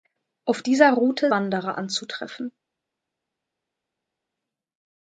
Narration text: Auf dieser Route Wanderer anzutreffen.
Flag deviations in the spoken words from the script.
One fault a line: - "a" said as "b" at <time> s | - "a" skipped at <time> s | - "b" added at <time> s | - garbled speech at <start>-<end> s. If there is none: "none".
none